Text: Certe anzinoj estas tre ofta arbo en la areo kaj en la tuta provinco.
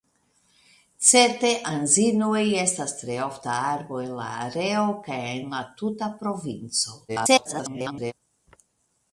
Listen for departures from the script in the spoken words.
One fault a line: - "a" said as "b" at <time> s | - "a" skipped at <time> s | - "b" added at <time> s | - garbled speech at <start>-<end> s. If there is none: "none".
- garbled speech at 7.1-8.1 s